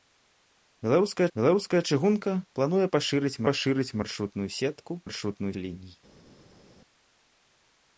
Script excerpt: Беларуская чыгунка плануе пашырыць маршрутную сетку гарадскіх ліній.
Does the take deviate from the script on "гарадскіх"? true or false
true